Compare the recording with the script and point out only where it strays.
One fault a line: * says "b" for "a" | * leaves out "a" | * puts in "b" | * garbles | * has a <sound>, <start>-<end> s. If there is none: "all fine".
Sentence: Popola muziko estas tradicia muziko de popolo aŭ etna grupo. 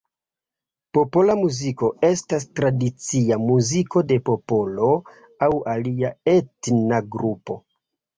* puts in "alia"